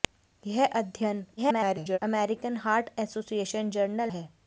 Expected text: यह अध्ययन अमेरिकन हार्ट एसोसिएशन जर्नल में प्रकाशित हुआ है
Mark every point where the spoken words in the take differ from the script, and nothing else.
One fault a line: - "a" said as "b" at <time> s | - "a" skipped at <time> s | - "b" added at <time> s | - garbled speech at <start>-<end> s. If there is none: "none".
- garbled speech at 1.4-2.0 s
- "में प्रकाशित हुआ" skipped at 4.1 s